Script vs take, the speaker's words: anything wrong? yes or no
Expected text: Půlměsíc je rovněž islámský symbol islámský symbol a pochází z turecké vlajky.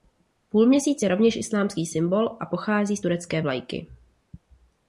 yes